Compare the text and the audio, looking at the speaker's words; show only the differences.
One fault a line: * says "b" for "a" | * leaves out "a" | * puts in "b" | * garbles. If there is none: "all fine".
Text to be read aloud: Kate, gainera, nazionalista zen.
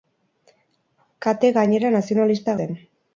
all fine